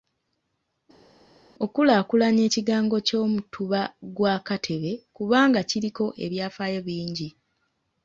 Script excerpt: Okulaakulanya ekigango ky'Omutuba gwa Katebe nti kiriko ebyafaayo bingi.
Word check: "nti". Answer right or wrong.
wrong